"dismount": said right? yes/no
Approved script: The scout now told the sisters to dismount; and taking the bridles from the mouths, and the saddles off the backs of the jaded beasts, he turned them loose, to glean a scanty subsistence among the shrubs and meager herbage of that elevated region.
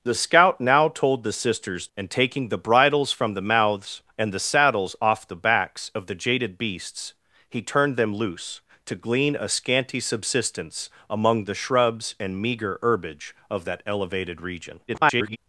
no